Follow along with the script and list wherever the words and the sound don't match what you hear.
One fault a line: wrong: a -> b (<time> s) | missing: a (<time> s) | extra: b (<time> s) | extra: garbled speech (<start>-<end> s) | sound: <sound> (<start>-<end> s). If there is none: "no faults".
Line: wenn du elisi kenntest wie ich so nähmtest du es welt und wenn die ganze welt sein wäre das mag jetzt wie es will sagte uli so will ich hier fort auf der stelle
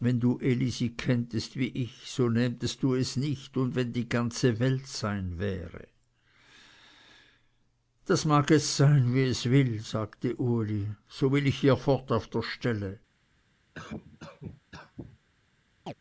wrong: welt -> nicht (3.2 s)
extra: sein (8.8 s)
sound: cough (13.7-15.2 s)
sound: chirp (15.9-15.9 s)